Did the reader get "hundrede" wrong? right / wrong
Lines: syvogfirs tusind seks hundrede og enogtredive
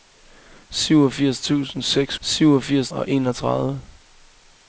wrong